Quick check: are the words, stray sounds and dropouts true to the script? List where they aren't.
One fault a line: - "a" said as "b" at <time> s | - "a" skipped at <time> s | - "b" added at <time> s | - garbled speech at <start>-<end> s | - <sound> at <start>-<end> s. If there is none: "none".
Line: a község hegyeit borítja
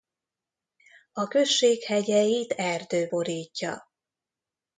- "erdő" added at 2.5 s